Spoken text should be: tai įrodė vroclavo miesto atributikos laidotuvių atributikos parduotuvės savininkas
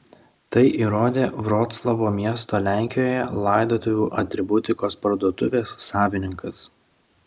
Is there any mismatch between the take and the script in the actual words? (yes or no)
yes